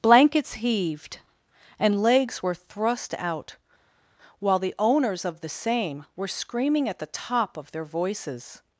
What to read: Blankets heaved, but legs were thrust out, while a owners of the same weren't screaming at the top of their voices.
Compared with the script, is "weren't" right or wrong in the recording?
wrong